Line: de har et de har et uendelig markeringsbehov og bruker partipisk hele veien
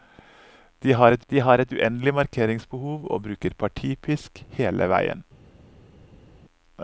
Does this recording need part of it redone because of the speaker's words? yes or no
no